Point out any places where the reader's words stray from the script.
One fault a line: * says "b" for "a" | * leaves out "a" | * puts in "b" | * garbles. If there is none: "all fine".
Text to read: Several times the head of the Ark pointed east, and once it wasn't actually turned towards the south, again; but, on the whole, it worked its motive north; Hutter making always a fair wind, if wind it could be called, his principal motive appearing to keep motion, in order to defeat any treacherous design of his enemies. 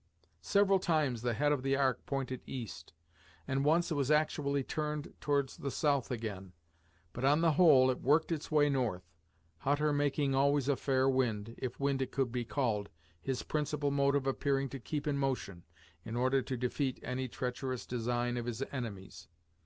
* says "was" for "wasn't"
* says "way" for "motive"
* puts in "in"